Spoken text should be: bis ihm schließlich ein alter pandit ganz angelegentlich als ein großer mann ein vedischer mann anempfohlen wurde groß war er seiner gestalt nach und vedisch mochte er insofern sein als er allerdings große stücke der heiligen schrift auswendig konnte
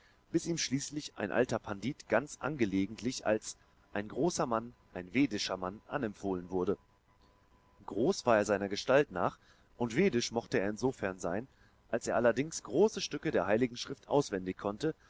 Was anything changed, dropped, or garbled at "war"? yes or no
no